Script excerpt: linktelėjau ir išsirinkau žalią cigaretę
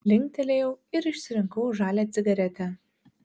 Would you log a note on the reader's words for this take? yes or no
no